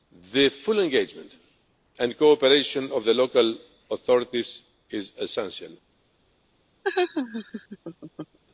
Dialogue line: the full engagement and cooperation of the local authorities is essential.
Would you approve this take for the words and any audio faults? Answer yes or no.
no